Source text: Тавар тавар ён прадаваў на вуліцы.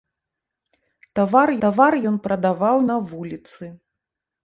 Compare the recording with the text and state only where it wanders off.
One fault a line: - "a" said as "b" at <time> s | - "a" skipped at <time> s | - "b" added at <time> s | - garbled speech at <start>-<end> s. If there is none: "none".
none